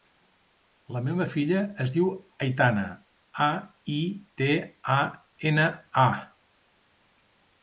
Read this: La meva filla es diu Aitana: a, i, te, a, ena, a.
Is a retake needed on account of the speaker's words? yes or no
no